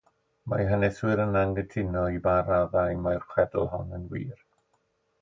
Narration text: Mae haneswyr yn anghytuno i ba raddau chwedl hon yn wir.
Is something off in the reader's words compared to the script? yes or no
yes